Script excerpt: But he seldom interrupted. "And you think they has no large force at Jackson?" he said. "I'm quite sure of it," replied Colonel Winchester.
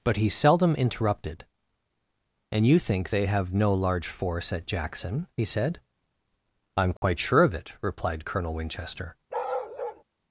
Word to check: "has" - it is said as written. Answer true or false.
false